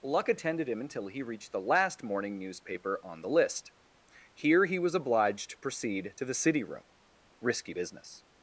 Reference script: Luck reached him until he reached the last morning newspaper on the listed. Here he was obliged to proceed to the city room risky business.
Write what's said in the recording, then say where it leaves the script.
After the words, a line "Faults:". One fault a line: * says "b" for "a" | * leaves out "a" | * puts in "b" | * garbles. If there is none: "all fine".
Luck attended him until he reached the last morning newspaper on the list. Here he was obliged to proceed to the city room risky business.
Faults:
* says "attended" for "reached"
* says "list" for "listed"